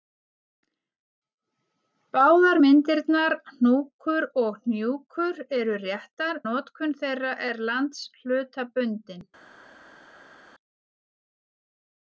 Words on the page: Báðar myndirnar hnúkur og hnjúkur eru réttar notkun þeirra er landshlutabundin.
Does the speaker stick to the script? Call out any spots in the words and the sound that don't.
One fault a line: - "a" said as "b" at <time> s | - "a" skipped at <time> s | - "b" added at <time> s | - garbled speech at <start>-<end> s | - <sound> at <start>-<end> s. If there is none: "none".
none